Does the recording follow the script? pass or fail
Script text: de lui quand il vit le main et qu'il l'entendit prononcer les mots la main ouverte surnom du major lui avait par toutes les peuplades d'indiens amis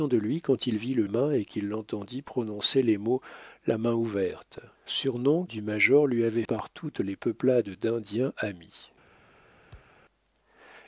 pass